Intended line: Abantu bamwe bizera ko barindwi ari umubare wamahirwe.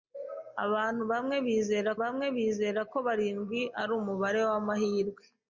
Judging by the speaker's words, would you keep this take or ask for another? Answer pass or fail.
fail